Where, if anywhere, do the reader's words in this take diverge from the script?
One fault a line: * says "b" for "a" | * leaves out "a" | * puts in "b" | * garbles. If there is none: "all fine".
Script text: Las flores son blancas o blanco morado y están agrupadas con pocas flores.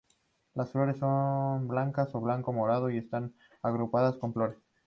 * leaves out "pocas"